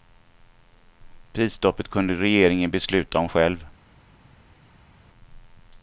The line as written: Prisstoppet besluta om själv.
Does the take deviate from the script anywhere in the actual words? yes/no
yes